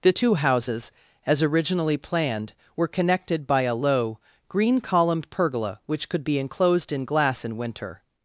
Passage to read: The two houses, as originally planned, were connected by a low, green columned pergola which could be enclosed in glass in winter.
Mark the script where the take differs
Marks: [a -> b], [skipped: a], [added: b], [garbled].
The two houses, as originally planned, were connected by a low, green columned pergola which could be enclosed in glass in winter.